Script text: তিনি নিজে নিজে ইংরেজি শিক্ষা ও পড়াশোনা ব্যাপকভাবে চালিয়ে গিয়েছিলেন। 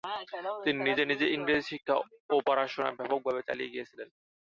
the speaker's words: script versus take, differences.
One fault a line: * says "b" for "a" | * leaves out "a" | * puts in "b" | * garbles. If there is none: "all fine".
all fine